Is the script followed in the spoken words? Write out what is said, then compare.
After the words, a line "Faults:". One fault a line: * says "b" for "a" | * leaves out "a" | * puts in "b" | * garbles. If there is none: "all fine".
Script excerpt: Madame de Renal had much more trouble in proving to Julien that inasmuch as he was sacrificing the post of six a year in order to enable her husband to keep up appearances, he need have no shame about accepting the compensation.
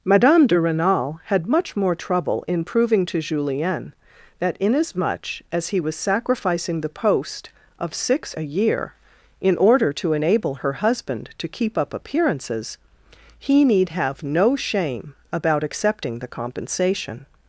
Madame de Renal had much more trouble in proving to Julien that inasmuch as he was sacrificing the post of six a year in order to enable her husband to keep up appearances, he need have no shame about accepting the compensation.
Faults:
all fine